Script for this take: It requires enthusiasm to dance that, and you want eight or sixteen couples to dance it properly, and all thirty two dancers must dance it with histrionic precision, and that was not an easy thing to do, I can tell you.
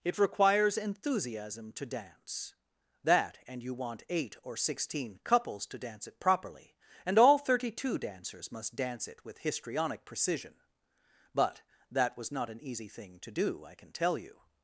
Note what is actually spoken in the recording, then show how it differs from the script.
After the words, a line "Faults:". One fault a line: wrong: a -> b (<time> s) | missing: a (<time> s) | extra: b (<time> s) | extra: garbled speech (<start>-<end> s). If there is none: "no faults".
It requires enthusiasm to dance that, and you want eight or sixteen couples to dance it properly, and all thirty two dancers must dance it with histrionic precision, but that was not an easy thing to do, I can tell you.
Faults:
wrong: and -> but (11.3 s)